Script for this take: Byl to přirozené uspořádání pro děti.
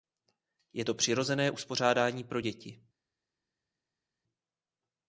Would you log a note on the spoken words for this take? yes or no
yes